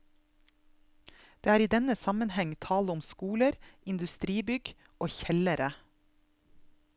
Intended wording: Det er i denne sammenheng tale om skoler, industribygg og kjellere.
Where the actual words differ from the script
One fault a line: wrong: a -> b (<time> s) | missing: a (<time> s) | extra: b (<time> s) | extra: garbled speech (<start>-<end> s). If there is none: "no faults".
no faults